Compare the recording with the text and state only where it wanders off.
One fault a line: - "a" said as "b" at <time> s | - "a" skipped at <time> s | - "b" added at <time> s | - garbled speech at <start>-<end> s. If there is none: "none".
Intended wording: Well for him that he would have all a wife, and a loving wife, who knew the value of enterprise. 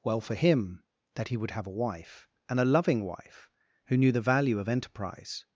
- "all" skipped at 1.7 s